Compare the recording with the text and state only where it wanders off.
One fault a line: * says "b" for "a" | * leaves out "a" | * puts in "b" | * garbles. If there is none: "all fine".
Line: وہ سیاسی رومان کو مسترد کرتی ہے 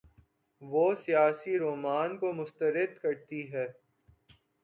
all fine